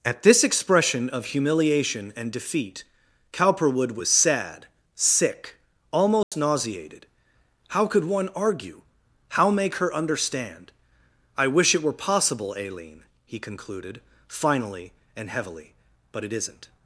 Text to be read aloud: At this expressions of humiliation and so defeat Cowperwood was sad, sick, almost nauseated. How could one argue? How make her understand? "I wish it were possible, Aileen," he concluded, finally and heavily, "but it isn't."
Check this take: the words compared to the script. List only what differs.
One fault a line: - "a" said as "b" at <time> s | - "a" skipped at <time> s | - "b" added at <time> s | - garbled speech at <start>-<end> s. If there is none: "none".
- "expressions" said as "expression" at 0.4 s
- "so" skipped at 2.3 s